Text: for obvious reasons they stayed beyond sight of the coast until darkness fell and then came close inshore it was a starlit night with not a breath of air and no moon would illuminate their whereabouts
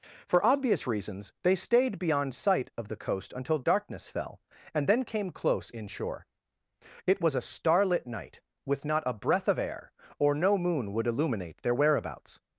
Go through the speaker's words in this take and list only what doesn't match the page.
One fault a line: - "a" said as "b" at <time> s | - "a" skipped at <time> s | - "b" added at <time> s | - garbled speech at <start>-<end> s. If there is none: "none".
- "and" said as "or" at 10.2 s